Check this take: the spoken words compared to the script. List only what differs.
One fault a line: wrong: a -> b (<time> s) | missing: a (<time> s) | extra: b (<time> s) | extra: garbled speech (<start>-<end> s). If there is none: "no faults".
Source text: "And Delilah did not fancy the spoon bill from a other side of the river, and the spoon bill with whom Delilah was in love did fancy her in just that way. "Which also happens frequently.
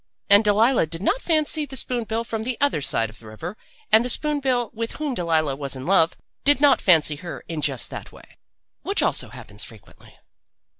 wrong: a -> the (2.4 s)
extra: not (6.6 s)